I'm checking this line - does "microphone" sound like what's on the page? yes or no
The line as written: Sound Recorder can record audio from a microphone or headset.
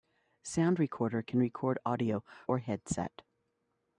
no